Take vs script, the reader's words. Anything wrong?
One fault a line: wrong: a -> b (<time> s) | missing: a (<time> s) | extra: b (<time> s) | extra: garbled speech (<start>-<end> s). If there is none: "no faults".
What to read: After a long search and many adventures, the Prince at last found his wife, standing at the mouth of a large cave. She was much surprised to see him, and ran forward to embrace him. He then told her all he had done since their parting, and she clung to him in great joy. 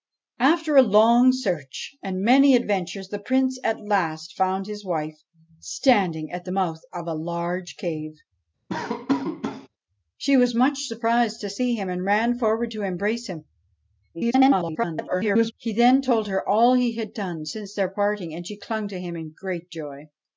extra: garbled speech (14.1-15.5 s)